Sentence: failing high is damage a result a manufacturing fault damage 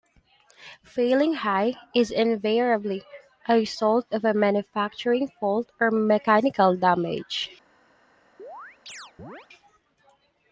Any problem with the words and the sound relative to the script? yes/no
yes